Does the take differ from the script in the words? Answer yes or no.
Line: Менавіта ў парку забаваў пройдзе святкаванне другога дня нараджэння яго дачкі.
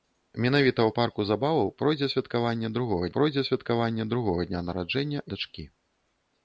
yes